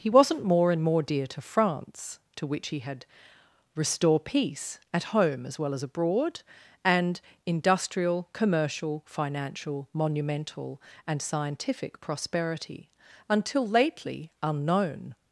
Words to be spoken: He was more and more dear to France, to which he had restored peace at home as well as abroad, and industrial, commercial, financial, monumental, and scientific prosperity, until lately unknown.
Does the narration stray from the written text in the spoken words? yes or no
yes